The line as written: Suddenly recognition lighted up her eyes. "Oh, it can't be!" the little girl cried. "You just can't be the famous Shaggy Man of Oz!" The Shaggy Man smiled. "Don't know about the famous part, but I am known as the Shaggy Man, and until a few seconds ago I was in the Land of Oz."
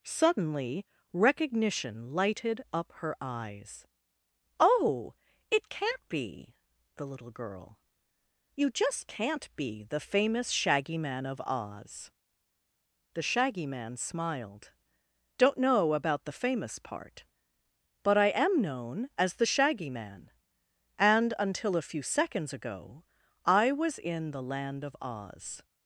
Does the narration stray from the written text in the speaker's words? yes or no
yes